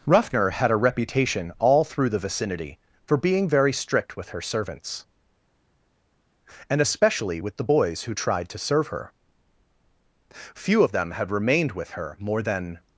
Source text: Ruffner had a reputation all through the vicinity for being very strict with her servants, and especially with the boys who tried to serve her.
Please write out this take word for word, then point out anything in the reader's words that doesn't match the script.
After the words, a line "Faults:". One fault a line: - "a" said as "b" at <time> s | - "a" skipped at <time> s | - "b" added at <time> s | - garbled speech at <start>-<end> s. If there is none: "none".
Ruffner had a reputation all through the vicinity for being very strict with her servants, and especially with the boys who tried to serve her. Few of them had remained with her more than
Faults:
- "Few of them had remained with her more than" added at 10.3 s